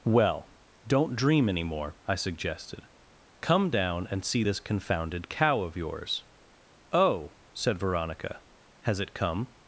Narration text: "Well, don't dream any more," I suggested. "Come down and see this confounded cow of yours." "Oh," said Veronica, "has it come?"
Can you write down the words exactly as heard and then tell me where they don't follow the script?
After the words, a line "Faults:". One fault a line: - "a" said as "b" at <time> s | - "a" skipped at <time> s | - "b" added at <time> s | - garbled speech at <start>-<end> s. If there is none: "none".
"Well, don't dream any more," I suggested. "Come down and see this confounded cow of yours." "Oh," said Veronica, "has it come?"
Faults:
none